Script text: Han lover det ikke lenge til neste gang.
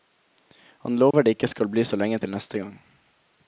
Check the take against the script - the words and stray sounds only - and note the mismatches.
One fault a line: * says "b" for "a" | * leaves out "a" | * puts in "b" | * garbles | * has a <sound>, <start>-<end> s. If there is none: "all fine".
* has a dropout, 1.1-1.1 s
* puts in "skal bli så"